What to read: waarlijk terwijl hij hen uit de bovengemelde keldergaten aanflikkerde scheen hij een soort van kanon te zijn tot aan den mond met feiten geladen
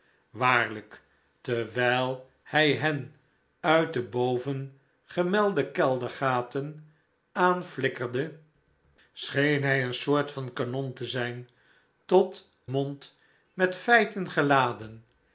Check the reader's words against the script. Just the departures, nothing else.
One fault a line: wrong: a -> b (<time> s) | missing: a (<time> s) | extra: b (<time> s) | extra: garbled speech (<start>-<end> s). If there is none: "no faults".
missing: aan den (12.5 s)